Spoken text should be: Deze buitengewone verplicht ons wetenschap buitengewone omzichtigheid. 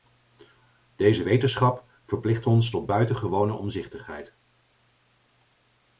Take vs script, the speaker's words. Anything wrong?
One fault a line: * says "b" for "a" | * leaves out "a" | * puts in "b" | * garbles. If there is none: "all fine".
* says "wetenschap" for "buitengewone"
* says "tot" for "wetenschap"